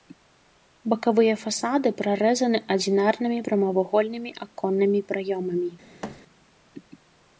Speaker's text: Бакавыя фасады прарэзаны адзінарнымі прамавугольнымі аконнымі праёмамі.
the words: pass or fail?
pass